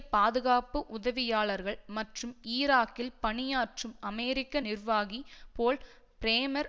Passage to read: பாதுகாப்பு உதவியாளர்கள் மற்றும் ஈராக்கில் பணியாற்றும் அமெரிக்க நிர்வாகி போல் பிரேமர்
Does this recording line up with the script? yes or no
yes